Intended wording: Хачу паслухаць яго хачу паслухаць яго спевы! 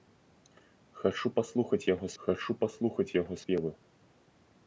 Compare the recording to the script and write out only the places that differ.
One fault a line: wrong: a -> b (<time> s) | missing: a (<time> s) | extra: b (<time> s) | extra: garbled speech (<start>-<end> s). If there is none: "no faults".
no faults